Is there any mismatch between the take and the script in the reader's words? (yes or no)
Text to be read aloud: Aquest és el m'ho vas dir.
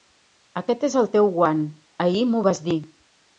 yes